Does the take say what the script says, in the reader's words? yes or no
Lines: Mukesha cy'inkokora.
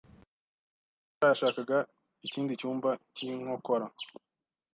no